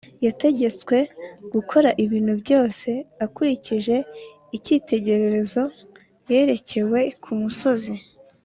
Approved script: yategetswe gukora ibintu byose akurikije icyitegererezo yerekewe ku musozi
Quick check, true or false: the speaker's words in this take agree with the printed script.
true